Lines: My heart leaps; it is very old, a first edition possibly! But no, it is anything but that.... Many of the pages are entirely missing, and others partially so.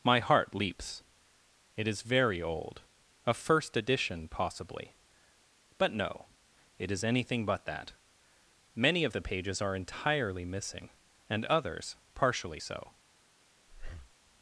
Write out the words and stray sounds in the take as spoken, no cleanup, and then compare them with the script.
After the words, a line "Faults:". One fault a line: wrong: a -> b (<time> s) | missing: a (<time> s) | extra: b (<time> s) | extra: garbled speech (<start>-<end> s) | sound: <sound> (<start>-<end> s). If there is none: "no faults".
My heart leaps; it is very old, a first edition possibly! But no, it is anything but that.... Many of the pages are entirely missing, and others partially so.
Faults:
sound: breath (13.7-14.1 s)